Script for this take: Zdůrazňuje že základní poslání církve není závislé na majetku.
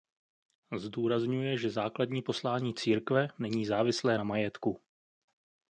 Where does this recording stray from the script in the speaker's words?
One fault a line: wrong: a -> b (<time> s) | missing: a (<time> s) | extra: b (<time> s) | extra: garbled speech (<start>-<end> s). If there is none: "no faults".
no faults